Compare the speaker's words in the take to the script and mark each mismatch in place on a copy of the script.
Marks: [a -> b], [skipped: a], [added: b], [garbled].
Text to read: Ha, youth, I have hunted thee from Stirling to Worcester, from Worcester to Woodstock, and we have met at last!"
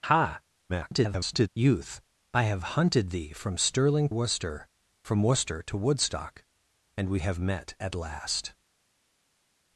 Ha, [garbled] youth, I have hunted thee from Stirling [skipped: to] Worcester, from Worcester to Woodstock, and we have met at last!"